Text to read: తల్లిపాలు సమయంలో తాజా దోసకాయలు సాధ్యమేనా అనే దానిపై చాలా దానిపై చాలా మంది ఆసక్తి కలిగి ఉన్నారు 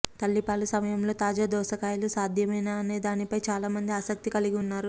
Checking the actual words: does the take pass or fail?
fail